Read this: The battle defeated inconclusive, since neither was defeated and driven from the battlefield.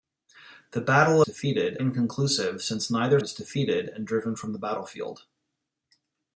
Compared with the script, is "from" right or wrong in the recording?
right